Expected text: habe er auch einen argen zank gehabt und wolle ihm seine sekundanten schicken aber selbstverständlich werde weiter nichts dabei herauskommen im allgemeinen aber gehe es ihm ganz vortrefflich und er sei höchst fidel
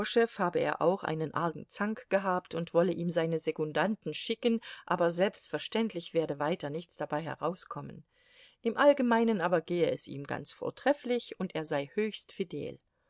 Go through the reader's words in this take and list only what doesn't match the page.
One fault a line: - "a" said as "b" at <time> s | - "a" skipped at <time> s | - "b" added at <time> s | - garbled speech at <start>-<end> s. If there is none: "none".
none